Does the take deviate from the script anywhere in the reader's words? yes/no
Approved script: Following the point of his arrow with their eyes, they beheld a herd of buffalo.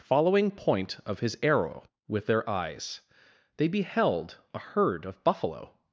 yes